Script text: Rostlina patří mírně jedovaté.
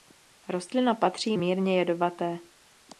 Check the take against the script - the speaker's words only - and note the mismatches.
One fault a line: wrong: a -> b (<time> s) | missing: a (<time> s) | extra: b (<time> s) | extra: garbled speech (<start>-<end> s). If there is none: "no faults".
no faults